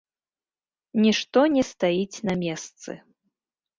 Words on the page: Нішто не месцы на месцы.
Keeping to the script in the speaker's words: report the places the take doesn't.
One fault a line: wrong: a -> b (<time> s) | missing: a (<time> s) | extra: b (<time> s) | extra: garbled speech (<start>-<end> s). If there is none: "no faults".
wrong: месцы -> стаіць (1.7 s)